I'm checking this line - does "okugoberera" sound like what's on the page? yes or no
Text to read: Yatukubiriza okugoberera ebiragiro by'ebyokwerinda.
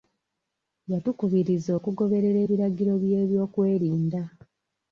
yes